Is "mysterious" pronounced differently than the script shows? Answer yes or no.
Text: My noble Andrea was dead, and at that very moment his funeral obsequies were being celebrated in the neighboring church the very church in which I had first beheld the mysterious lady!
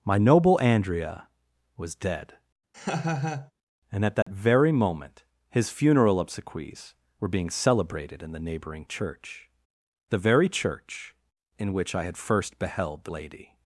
yes